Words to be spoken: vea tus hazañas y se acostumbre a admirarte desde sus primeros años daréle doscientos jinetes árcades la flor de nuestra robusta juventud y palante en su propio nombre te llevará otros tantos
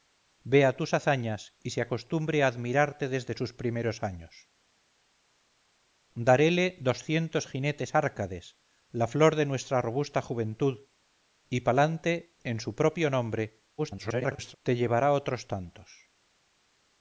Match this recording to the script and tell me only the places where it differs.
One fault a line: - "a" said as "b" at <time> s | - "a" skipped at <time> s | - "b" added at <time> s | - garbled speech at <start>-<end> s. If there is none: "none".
- garbled speech at 13.8-14.6 s